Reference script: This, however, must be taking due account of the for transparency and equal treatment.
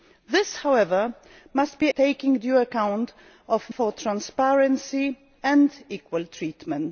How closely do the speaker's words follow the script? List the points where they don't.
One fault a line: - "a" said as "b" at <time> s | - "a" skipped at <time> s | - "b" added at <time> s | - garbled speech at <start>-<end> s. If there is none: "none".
none